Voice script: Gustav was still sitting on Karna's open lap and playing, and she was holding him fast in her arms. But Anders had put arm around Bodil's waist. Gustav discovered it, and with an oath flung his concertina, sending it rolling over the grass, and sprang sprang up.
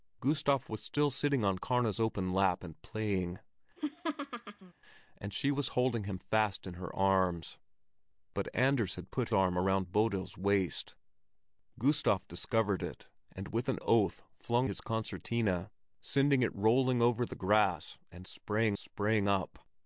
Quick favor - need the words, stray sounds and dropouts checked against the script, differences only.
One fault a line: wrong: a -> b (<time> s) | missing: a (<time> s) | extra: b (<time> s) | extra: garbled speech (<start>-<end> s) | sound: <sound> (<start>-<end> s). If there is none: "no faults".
sound: laugh (3.8-4.7 s)